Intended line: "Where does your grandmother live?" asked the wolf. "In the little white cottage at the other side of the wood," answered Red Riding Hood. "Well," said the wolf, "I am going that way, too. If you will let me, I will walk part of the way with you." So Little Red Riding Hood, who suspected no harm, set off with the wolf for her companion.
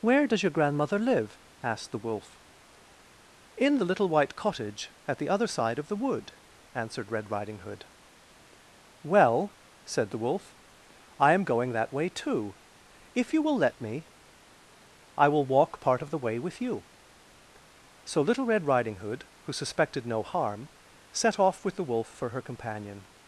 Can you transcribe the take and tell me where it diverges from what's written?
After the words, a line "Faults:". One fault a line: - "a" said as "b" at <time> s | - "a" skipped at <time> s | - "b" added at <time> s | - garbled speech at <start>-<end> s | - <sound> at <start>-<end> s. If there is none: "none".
"Where does your grandmother live?" asked the wolf. "In the little white cottage at the other side of the wood," answered Red Riding Hood. "Well," said the wolf, "I am going that way, too. If you will let me, I will walk part of the way with you." So Little Red Riding Hood, who suspected no harm, set off with the wolf for her companion.
Faults:
none